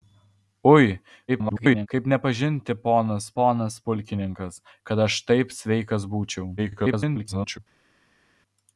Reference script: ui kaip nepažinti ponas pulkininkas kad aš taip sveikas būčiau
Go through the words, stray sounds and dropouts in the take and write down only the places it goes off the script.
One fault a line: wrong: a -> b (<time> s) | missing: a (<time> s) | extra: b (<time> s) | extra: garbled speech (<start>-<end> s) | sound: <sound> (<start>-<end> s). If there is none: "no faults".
extra: garbled speech (1.3-1.9 s)
extra: ponas (3.4 s)
extra: garbled speech (6.6-7.6 s)